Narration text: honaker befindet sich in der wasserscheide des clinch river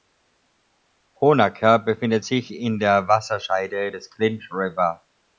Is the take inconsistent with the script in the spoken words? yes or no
no